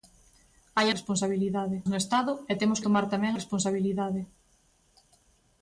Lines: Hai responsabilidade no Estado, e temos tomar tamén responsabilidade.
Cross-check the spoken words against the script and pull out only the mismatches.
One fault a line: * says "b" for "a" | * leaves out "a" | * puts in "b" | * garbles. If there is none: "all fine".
all fine